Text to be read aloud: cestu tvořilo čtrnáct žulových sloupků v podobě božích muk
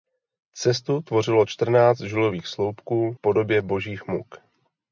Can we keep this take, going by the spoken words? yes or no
no